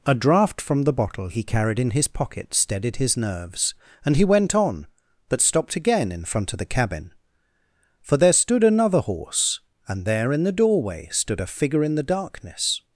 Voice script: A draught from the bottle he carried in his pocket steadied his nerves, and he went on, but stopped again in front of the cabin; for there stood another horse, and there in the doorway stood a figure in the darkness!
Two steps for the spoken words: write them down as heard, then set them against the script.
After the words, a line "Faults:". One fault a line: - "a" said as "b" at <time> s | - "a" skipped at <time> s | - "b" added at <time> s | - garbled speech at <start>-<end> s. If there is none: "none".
A draught from the bottle he carried in his pocket steadied his nerves, and he went on, but stopped again in front of the cabin; for there stood another horse, and there in the doorway stood a figure in the darkness!
Faults:
none